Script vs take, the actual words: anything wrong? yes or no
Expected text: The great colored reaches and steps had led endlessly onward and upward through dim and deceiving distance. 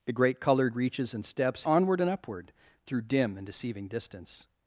yes